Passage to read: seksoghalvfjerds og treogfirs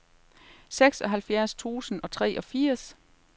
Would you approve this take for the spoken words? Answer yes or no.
no